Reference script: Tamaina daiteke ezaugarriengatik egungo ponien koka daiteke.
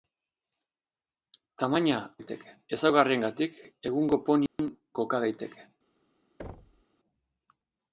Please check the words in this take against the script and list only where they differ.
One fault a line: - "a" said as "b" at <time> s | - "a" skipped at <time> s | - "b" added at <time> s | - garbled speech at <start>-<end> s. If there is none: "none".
none